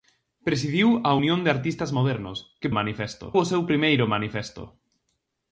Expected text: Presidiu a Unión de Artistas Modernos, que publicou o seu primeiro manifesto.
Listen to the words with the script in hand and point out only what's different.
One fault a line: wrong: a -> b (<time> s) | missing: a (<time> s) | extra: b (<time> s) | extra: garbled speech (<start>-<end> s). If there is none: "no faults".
wrong: publicou -> manifesto (2.8 s)